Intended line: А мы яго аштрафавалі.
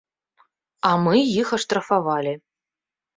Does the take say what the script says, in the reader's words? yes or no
no